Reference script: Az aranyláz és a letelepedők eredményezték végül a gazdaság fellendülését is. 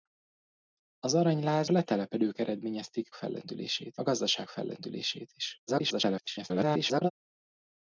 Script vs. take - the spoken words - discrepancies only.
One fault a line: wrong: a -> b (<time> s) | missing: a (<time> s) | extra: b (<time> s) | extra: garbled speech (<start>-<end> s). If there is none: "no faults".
missing: és (1.7 s)
wrong: végül -> fellendülését (3.1 s)
extra: garbled speech (5.7-7.1 s)